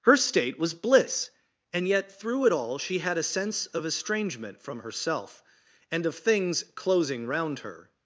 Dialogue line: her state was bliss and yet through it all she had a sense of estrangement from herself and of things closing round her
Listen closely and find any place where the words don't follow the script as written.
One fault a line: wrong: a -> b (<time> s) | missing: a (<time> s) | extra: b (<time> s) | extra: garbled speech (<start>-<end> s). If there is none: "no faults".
no faults